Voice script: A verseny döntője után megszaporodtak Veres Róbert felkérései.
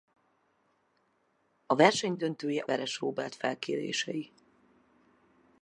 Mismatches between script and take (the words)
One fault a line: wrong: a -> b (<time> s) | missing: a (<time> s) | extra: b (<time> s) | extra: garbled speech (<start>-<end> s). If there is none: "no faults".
missing: után megszaporodtak (2.6 s)